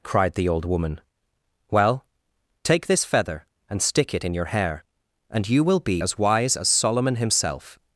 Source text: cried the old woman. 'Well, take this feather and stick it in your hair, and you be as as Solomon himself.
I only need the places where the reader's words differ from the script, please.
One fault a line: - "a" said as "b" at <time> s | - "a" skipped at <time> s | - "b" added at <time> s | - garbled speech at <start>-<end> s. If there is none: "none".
- "will" added at 5.6 s
- "wise" added at 6.2 s